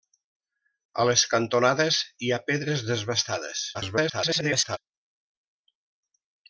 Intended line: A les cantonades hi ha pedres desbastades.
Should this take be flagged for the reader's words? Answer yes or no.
yes